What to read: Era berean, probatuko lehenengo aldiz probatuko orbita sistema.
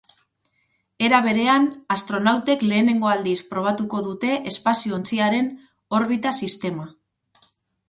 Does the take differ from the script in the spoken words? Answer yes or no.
yes